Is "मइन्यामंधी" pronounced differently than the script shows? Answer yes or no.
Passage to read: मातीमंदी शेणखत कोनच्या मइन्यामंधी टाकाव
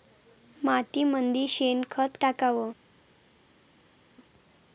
yes